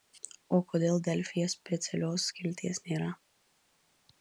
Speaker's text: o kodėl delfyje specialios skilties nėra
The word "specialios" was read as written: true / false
true